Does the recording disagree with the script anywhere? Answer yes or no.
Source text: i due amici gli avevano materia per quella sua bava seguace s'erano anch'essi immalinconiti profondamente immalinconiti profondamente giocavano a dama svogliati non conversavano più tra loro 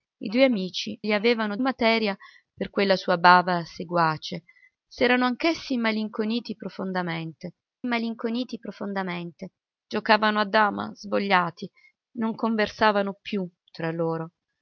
no